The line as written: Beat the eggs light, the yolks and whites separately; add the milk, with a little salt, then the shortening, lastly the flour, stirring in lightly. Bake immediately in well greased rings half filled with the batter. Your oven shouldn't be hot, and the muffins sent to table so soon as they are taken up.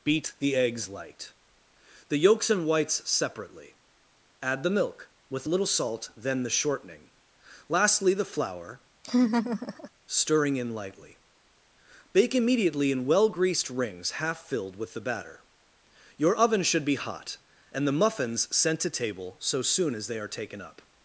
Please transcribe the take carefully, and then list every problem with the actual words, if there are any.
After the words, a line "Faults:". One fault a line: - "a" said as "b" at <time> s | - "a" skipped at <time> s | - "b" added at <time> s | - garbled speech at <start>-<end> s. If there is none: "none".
Beat the eggs light, the yolks and whites separately; add the milk, with a little salt, then the shortening, lastly the flour, stirring in lightly. Bake immediately in well greased rings half filled with the batter. Your oven should be hot, and the muffins sent to table so soon as they are taken up.
Faults:
- "shouldn't" said as "should" at 16.6 s